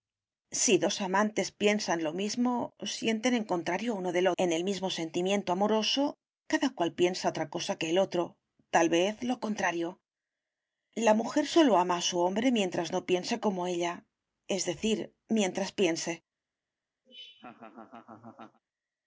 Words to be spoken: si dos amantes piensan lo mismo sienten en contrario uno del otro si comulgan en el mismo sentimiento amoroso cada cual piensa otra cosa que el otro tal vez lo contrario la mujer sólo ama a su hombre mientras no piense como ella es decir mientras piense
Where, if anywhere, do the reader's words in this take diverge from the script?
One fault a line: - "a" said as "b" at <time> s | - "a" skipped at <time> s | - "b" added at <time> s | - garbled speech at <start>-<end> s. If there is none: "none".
- "otro si comulgan" skipped at 4.3 s